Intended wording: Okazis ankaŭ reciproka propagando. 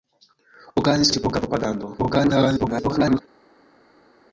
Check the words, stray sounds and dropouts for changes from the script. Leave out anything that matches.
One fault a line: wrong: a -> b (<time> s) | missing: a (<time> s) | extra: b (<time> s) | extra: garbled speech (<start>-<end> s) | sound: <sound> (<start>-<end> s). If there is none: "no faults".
missing: ankaŭ (1.1 s)
extra: garbled speech (2.0-3.2 s)